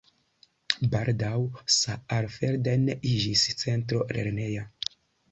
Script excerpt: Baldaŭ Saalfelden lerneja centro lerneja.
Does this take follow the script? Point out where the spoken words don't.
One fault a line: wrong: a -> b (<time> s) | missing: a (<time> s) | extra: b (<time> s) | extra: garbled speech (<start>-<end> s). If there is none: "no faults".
wrong: lerneja -> iĝis (3.1 s)